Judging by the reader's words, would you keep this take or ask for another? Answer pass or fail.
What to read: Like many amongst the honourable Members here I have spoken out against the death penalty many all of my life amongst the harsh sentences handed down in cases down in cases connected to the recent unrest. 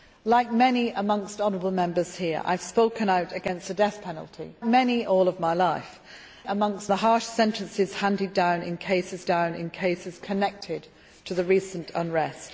pass